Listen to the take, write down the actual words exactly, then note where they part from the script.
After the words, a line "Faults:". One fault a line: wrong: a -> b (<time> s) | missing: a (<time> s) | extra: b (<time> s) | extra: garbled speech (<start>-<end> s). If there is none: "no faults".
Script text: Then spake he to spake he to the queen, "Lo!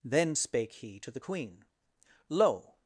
Then spake he to the queen, "Lo!
Faults:
missing: spake he to (1.1 s)